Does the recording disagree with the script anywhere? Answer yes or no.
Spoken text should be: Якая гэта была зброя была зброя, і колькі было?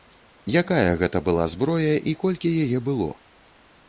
yes